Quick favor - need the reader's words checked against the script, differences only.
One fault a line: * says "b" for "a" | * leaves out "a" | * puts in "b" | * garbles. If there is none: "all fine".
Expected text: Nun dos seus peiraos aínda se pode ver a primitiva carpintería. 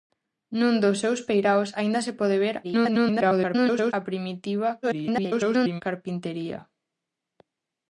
* garbles
* garbles